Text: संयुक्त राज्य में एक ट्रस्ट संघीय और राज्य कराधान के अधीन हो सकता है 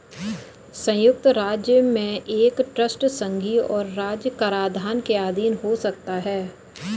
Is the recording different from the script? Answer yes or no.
no